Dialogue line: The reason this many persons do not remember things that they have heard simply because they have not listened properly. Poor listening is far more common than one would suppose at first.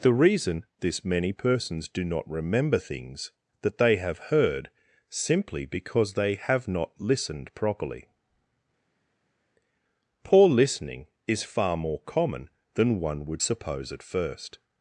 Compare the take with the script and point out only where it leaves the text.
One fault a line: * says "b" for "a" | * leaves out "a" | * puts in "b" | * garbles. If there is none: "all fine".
all fine